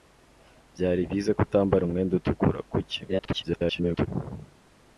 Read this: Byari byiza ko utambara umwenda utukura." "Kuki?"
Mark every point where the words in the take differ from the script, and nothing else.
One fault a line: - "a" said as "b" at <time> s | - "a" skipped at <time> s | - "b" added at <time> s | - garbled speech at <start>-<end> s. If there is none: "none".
- garbled speech at 3.1-4.1 s